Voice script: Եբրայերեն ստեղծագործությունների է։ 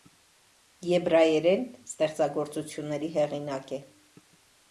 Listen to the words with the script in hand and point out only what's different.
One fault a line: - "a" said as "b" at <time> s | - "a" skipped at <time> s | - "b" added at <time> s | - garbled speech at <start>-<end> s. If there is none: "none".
- "հեղինակ" added at 3.2 s